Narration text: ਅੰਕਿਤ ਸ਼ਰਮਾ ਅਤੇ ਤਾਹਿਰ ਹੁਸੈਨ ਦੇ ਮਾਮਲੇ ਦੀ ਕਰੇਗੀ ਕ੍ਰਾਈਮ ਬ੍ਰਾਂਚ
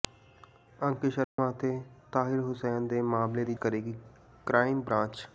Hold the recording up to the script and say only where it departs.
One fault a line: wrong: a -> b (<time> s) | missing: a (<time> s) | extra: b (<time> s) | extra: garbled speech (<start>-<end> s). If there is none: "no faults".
no faults